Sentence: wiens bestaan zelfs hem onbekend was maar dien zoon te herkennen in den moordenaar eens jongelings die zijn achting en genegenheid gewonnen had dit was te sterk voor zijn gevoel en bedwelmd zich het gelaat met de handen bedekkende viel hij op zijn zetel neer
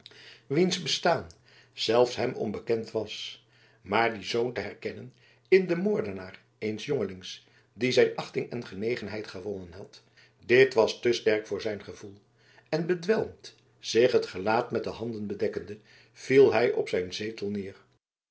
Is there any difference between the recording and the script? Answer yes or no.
no